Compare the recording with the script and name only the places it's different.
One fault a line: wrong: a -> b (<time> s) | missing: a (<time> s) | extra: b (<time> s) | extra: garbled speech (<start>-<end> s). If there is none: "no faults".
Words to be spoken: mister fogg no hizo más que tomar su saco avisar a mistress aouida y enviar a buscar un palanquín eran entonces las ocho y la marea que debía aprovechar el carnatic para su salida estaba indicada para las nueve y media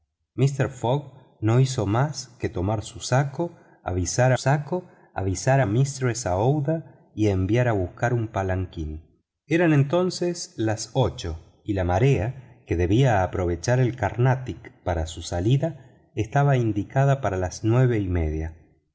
extra: saco avisar (4.4 s)